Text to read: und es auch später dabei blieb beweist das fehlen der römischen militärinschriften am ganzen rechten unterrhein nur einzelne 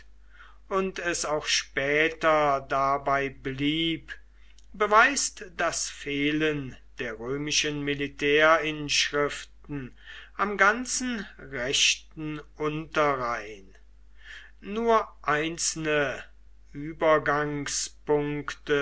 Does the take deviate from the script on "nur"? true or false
false